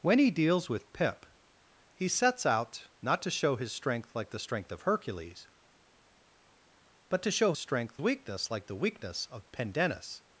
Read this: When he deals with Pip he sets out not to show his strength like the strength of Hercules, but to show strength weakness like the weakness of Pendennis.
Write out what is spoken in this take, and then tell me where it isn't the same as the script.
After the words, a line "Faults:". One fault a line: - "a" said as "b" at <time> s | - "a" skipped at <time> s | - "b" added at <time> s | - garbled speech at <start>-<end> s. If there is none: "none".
When he deals with Pip he sets out not to show his strength like the strength of Hercules, but to show strength weakness like the weakness of Pendennis.
Faults:
none